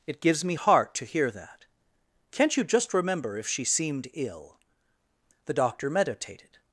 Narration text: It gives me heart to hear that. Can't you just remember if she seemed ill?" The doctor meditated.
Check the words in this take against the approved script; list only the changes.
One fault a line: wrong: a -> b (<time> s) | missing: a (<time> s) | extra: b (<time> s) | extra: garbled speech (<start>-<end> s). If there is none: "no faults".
no faults